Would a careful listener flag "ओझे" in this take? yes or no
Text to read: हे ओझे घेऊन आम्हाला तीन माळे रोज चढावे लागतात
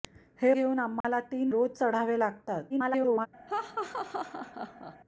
yes